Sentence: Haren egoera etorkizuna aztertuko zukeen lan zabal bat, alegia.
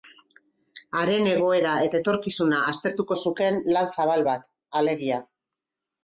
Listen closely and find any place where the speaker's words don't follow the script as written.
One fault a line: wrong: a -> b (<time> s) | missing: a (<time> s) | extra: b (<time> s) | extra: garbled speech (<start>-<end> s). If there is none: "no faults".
extra: eta (1.9 s)